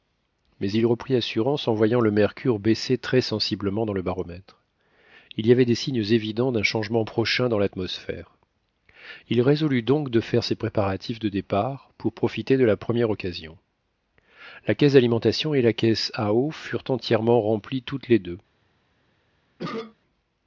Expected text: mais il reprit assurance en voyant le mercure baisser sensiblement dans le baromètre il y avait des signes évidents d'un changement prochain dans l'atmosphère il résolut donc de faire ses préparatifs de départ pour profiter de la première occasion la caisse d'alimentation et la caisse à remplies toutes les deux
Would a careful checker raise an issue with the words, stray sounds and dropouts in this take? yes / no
yes